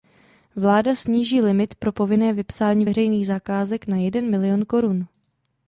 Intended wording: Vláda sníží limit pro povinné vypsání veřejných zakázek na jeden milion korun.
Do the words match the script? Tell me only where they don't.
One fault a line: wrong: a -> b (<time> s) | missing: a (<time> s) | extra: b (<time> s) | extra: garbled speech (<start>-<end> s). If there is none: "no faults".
no faults